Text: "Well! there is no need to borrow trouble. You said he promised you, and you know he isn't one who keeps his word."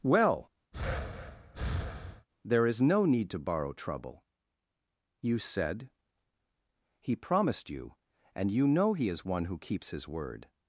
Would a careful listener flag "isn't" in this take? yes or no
yes